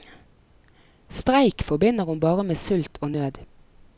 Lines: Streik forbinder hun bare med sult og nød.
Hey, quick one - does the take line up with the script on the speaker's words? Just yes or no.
yes